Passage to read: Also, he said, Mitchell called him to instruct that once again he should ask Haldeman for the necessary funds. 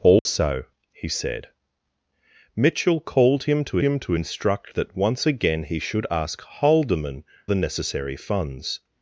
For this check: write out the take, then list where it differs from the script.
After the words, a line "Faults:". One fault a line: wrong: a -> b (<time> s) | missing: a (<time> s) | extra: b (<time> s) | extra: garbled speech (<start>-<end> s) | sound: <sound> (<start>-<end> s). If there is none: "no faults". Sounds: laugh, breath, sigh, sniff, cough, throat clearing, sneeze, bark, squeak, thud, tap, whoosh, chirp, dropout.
Also, he said, Mitchell called him to him to instruct that once again he should ask Haldeman the necessary funds.
Faults:
sound: dropout (0.2-0.3 s)
extra: him to (3.8 s)
missing: for (7.2 s)